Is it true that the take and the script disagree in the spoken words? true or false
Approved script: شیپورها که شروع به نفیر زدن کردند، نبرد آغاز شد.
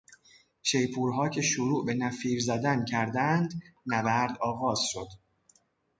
false